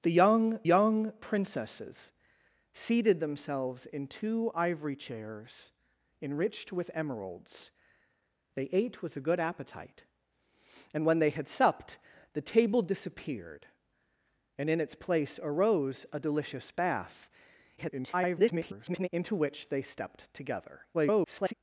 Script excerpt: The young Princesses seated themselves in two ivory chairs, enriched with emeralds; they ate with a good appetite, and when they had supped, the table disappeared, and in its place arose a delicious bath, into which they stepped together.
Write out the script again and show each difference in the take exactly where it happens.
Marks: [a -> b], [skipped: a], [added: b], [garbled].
The young [added: young] Princesses seated themselves in two ivory chairs, enriched with emeralds; they ate with a good appetite, and when they had supped, the table disappeared, and in its place arose a delicious bath, [garbled] into which they stepped together. [garbled]